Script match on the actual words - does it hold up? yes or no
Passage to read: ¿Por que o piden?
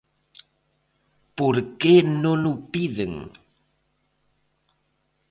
no